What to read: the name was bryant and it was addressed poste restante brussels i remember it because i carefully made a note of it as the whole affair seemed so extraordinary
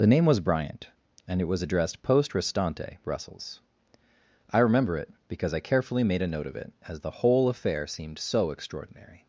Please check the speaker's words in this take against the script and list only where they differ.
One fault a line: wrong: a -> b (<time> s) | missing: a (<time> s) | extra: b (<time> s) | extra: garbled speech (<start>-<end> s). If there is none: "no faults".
no faults